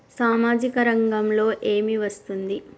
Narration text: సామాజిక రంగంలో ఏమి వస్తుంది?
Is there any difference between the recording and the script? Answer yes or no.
no